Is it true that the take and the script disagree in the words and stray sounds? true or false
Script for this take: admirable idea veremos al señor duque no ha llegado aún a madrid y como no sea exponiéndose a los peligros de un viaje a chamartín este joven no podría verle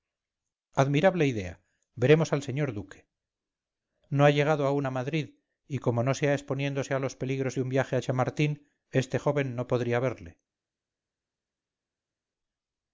false